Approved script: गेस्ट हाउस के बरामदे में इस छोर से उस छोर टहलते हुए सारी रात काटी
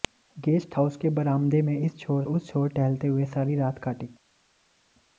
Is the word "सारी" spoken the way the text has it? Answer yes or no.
yes